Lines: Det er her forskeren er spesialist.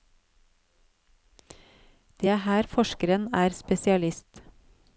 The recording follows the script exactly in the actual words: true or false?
true